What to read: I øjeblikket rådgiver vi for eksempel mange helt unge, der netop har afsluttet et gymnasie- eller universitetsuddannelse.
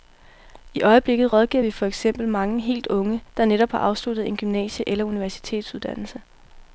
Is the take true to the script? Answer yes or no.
no